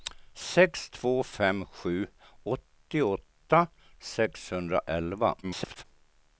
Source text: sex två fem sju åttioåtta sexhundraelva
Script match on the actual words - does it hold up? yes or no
no